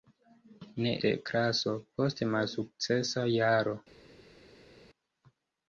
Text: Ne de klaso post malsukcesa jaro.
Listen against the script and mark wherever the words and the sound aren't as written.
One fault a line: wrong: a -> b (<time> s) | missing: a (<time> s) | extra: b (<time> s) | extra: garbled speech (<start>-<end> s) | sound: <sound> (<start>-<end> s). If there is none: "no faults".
no faults